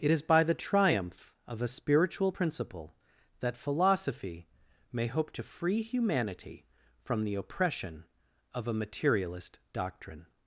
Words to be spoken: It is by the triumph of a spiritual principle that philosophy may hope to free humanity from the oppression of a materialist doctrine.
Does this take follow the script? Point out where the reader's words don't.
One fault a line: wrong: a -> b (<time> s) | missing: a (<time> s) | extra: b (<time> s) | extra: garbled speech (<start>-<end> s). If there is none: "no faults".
no faults